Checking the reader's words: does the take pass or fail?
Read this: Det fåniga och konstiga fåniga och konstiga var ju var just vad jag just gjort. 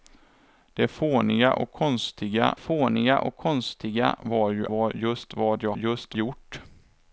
pass